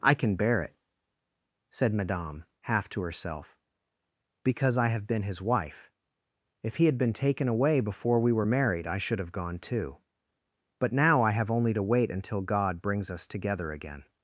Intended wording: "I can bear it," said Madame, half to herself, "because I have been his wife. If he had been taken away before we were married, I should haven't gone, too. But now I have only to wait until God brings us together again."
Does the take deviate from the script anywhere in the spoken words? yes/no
yes